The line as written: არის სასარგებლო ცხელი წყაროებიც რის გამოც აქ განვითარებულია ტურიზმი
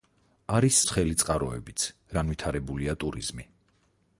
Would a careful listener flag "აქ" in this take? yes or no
yes